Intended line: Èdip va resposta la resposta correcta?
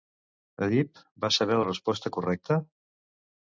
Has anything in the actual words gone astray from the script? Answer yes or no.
yes